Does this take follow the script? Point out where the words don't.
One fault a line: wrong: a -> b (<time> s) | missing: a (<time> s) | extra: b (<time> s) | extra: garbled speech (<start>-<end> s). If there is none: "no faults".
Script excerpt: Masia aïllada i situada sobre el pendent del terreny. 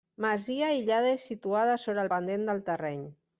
no faults